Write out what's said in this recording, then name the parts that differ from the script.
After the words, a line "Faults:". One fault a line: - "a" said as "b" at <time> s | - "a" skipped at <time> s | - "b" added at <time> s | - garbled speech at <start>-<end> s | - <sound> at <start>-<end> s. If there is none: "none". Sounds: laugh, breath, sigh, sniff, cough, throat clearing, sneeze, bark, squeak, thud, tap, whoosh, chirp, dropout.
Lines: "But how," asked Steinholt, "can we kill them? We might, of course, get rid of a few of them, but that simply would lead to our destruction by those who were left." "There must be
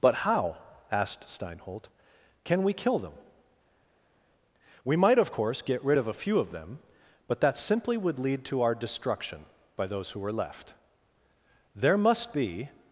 "But how," asked Steinholt, "can we kill them? We might, of course, get rid of a few of them, but that simply would lead to our destruction by those who were left." "There must be
Faults:
none